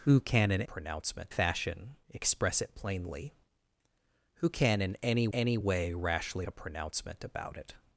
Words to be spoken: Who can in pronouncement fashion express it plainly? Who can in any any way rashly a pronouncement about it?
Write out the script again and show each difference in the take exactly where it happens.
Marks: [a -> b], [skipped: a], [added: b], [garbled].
Who can in pronouncement fashion express it plainly? Who can in any any way rashly a pronouncement about it?